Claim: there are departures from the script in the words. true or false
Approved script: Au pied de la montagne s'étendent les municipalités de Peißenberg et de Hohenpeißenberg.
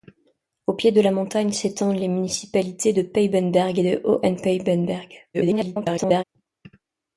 true